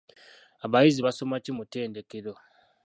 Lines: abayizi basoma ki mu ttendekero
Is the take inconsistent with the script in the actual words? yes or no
no